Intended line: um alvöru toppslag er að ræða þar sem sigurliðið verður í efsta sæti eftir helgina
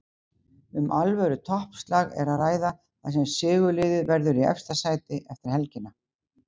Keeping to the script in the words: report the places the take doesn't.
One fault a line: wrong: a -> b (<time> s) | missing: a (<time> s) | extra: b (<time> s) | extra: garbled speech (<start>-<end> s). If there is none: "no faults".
no faults